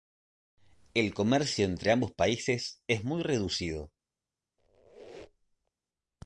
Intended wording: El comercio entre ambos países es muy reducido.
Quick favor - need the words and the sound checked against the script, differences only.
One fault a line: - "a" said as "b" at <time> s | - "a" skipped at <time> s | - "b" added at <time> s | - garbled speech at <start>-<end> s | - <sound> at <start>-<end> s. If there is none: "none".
- squeak at 4.6-5.7 s